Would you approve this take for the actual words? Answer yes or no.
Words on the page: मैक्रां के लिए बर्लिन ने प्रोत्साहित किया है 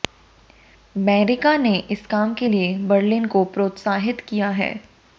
no